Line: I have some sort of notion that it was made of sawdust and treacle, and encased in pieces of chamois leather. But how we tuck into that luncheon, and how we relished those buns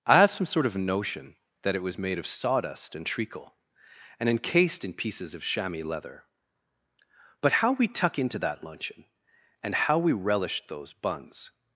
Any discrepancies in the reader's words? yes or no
no